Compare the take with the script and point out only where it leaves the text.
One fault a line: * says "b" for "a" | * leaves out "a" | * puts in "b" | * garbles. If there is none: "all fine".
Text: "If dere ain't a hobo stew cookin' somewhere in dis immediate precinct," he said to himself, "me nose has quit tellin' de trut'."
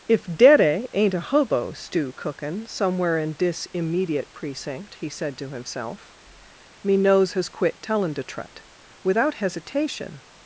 * puts in "Without hesitation"